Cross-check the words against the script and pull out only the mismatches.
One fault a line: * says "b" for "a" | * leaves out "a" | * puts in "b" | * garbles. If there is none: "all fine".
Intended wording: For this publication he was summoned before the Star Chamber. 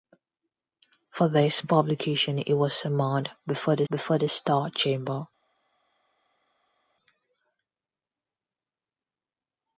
* puts in "before the"